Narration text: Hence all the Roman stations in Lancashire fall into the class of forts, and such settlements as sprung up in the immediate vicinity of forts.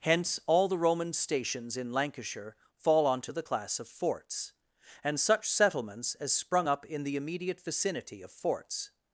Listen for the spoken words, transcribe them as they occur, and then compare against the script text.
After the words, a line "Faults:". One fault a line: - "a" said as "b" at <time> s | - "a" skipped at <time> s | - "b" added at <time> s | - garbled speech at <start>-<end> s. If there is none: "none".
Hence all the Roman stations in Lancashire fall onto the class of forts, and such settlements as sprung up in the immediate vicinity of forts.
Faults:
- "into" said as "onto" at 3.0 s